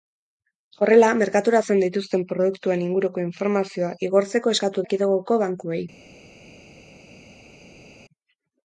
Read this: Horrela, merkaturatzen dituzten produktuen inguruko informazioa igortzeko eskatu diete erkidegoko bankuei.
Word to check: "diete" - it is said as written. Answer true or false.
false